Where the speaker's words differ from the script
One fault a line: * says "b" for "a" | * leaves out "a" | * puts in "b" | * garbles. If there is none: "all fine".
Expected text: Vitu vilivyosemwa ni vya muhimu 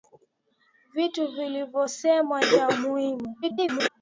* leaves out "ni"
* garbles